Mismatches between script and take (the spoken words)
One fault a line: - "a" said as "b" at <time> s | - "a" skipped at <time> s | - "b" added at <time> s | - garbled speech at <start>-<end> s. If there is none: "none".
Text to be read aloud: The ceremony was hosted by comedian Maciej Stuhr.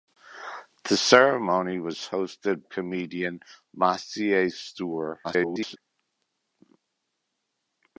- "by" skipped at 2.6 s
- garbled speech at 5.2-5.8 s